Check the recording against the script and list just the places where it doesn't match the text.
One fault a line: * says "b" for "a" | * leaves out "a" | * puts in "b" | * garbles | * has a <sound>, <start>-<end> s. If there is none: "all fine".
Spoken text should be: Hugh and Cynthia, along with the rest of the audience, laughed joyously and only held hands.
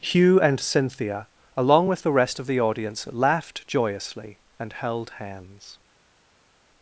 * leaves out "only"